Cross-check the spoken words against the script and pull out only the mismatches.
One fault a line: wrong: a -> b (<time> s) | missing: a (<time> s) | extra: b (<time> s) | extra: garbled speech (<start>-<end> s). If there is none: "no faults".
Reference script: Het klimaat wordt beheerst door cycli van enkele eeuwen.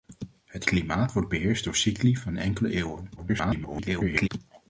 extra: garbled speech (3.2-4.3 s)